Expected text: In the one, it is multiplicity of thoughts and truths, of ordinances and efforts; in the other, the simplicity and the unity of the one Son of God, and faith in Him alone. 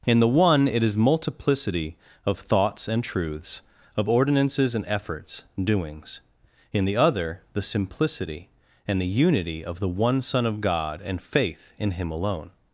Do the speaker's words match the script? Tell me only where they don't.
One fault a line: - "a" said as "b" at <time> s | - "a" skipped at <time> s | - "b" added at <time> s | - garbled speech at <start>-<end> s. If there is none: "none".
- "doings" added at 5.6 s